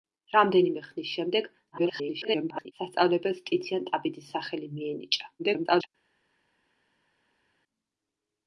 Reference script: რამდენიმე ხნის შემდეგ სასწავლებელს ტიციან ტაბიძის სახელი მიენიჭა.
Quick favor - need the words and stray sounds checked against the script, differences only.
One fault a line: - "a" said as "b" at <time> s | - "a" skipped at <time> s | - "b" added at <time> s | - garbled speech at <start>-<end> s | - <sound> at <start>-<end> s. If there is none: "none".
- garbled speech at 1.7-2.7 s
- garbled speech at 5.4-5.9 s